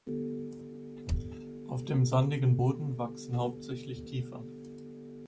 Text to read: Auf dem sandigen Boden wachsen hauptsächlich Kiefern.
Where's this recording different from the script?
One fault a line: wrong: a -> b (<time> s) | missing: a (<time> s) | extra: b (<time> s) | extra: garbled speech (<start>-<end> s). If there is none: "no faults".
no faults